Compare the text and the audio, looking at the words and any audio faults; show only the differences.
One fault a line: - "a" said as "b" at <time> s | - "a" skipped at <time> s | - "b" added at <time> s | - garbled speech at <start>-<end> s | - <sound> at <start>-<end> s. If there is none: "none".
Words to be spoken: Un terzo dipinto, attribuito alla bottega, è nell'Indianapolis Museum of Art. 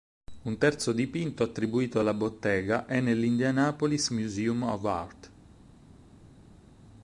none